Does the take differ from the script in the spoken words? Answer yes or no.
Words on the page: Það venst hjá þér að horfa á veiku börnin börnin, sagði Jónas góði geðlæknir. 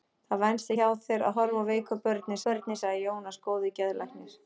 no